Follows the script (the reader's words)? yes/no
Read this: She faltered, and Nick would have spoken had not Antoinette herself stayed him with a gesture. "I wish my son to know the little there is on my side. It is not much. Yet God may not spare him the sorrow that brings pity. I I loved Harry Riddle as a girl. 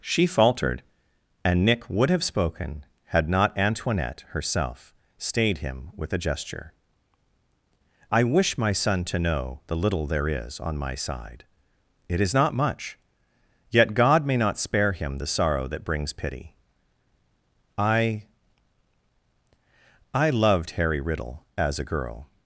yes